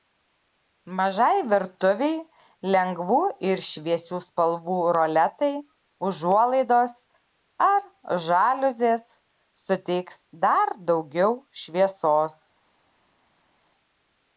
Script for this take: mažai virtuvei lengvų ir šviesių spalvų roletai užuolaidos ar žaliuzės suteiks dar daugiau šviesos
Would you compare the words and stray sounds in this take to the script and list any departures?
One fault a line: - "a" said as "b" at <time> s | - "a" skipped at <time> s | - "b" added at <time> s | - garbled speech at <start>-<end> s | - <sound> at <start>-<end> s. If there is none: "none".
none